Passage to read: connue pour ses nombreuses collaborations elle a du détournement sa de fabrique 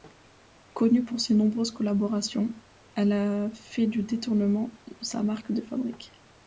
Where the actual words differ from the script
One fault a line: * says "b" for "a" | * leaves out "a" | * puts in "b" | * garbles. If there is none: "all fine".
* puts in "fait"
* puts in "marque"